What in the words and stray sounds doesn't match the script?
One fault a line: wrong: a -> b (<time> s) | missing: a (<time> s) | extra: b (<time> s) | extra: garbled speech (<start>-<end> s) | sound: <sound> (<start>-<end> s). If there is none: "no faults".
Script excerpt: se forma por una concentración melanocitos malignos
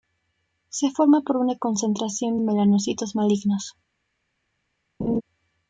sound: laugh (5.0-5.2 s)